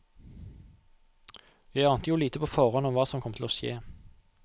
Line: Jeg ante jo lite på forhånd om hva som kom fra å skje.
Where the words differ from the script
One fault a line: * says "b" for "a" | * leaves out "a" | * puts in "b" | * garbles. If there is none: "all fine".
* says "til" for "fra"